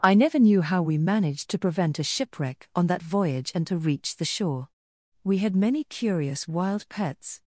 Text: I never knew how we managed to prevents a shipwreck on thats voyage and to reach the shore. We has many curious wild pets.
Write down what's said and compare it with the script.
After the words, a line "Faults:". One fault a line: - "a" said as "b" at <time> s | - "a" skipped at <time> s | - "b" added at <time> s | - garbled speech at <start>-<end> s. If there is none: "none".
I never knew how we managed to prevent a shipwreck on that voyage and to reach the shore. We had many curious wild pets.
Faults:
- "prevents" said as "prevent" at 1.6 s
- "thats" said as "that" at 2.9 s
- "has" said as "had" at 5.4 s